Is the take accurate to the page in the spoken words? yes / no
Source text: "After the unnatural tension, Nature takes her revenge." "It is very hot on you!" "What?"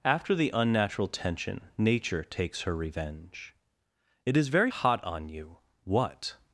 yes